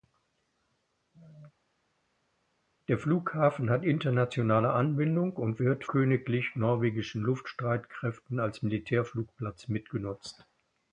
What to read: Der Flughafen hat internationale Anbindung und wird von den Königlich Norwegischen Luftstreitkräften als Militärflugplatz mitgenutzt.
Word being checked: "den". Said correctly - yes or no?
no